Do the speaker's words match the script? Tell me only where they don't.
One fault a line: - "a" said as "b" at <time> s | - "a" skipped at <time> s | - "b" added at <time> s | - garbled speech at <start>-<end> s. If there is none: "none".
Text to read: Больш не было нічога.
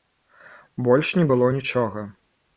none